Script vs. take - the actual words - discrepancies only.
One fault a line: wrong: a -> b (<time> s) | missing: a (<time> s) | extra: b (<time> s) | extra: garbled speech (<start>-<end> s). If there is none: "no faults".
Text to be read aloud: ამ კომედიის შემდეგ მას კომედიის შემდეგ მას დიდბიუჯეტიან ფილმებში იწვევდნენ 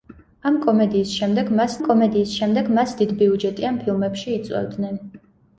no faults